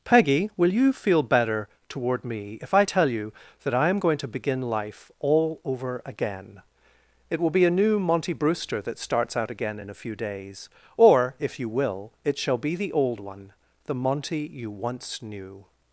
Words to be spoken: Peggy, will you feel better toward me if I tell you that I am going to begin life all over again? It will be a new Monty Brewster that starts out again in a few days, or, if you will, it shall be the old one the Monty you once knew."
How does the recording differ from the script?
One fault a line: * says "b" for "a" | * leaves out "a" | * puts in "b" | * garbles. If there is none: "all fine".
all fine